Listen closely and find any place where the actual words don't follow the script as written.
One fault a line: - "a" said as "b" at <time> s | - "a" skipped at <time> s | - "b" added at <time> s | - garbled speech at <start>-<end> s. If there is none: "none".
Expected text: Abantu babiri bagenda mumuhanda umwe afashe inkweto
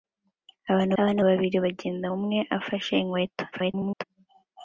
- "abantu" added at 1.0 s
- "mumuhanda" skipped at 2.1 s
- garbled speech at 3.5-4.0 s